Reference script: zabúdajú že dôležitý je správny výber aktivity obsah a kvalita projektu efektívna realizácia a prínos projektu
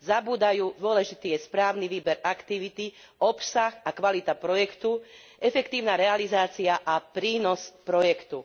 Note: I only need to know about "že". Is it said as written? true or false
false